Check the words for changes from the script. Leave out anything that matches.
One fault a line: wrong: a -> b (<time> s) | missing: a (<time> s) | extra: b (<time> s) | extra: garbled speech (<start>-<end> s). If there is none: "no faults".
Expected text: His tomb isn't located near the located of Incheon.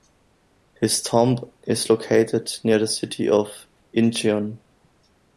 wrong: isn't -> is (1.6 s)
wrong: located -> city (2.9 s)